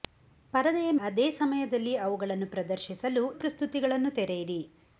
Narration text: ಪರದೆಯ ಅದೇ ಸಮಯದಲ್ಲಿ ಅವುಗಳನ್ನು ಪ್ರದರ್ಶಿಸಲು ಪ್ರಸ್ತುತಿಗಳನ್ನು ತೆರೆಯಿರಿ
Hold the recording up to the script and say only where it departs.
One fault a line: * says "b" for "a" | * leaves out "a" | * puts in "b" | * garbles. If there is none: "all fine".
all fine